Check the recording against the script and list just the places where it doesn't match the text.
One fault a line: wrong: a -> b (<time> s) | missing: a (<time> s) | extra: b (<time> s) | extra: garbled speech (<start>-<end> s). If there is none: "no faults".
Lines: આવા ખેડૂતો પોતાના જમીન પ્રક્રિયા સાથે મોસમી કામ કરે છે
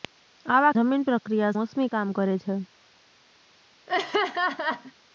missing: ખેડૂતો પોતાના (0.7 s)
missing: સાથે (1.5 s)